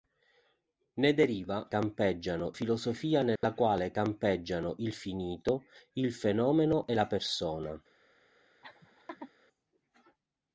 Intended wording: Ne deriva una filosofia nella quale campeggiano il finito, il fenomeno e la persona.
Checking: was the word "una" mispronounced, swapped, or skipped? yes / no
yes